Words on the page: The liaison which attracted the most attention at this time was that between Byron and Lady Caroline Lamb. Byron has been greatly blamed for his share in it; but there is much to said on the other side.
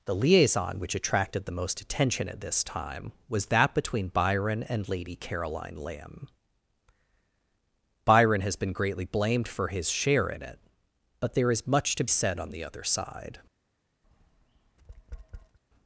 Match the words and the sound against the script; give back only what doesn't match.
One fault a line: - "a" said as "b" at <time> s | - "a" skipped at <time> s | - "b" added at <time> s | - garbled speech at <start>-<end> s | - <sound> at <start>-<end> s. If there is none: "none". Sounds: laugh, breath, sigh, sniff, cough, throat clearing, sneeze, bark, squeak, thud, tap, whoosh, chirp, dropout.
- tap at 14.0-15.6 s